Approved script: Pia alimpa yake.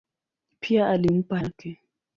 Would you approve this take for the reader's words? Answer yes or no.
yes